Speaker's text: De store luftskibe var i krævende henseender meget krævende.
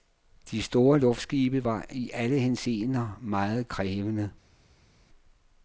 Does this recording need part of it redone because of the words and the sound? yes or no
yes